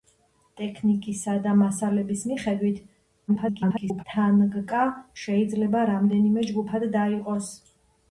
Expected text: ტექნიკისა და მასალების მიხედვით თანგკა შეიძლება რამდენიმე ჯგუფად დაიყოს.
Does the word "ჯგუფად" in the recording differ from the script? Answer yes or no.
no